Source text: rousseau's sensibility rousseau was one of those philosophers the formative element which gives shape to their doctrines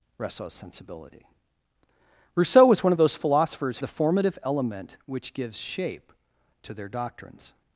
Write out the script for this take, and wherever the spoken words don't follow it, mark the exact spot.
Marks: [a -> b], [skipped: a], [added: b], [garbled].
rousseau's sensibility rousseau was one of those philosophers the formative element which gives shape to their doctrines